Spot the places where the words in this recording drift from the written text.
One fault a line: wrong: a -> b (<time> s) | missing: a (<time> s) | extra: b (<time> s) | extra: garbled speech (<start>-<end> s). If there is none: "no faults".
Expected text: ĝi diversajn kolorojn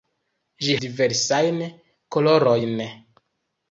no faults